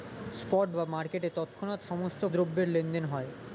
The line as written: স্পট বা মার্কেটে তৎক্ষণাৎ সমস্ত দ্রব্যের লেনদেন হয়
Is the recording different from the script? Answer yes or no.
no